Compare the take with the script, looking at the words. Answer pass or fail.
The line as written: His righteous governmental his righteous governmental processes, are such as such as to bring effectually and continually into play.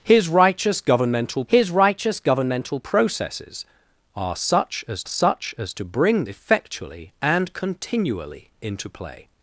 pass